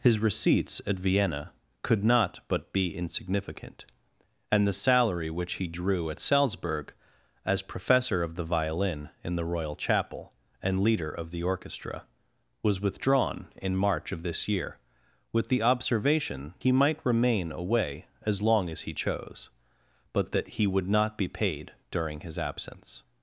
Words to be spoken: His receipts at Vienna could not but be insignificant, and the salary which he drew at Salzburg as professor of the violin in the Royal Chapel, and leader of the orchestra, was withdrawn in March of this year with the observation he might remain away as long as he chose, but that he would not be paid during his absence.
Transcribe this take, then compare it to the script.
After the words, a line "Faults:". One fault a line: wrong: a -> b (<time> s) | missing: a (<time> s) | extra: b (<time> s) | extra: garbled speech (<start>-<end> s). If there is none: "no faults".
His receipts at Vienna could not but be insignificant, and the salary which he drew at Salzburg as professor of the violin in the Royal Chapel, and leader of the orchestra, was withdrawn in March of this year with the observation he might remain away as long as he chose, but that he would not be paid during his absence.
Faults:
no faults